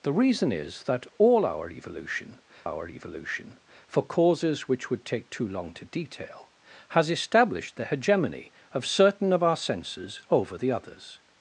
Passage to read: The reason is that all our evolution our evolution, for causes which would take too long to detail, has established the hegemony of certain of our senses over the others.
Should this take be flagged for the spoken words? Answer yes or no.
no